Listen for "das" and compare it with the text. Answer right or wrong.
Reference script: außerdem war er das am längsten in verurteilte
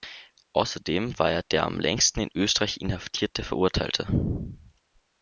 wrong